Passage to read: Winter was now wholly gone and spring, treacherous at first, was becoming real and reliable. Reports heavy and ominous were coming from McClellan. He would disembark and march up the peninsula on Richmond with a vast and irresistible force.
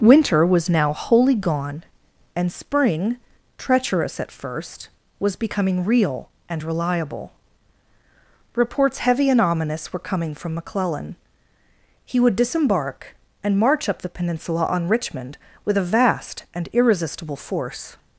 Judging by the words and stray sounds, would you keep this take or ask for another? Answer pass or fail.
pass